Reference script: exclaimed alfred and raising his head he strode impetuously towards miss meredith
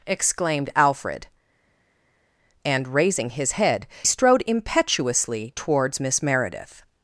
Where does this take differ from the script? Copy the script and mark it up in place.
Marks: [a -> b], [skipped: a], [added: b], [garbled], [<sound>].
exclaimed alfred and raising his head [skipped: he] strode impetuously towards miss meredith